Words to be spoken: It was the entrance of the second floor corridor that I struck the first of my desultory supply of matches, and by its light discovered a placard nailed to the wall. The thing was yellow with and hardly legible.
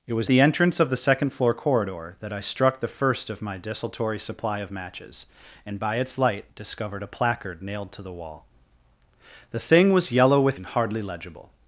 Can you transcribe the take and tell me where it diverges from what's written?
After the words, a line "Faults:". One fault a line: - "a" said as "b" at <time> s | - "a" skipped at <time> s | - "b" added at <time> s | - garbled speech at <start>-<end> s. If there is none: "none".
It was the entrance of the second floor corridor that I struck the first of my desultory supply of matches, and by its light discovered a placard nailed to the wall. The thing was yellow with and hardly legible.
Faults:
none